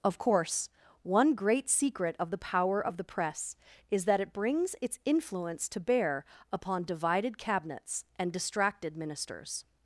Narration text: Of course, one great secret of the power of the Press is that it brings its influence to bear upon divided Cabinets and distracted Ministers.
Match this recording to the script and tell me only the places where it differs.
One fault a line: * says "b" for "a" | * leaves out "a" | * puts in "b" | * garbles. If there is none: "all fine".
all fine